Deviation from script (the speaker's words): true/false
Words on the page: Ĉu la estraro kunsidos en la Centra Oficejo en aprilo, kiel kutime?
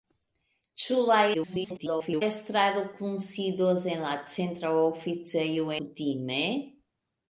true